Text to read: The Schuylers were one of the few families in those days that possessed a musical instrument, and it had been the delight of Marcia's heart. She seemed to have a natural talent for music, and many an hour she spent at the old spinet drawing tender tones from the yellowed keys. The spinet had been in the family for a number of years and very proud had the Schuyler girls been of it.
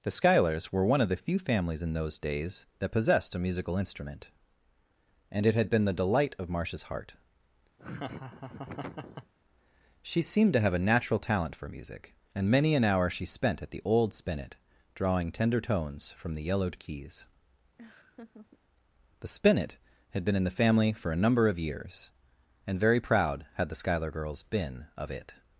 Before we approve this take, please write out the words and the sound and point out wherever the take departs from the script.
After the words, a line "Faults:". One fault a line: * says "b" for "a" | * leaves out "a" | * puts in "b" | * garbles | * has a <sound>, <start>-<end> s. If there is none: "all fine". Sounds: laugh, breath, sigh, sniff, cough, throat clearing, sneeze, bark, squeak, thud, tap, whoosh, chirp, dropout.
The Schuylers were one of the few families in those days that possessed a musical instrument, and it had been the delight of Marcia's heart. She seemed to have a natural talent for music, and many an hour she spent at the old spinet drawing tender tones from the yellowed keys. The spinet had been in the family for a number of years and very proud had the Schuyler girls been of it.
Faults:
* has a laugh, 7.8-9.3 s
* has a laugh, 17.8-18.6 s